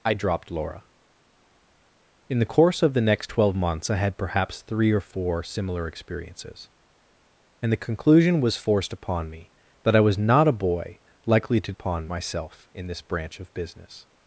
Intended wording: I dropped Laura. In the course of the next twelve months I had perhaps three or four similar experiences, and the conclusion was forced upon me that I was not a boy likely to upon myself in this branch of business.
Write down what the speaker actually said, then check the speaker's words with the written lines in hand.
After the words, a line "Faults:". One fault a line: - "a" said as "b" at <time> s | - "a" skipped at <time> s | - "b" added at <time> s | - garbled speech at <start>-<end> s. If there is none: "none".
I dropped Laura. In the course of the next twelve months I had perhaps three or four similar experiences, and the conclusion was forced upon me that I was not a boy likely to upon myself in this branch of business.
Faults:
none